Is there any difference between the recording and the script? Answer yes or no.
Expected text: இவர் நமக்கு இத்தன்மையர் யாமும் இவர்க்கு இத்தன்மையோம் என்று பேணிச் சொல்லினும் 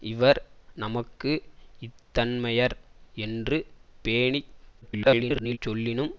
yes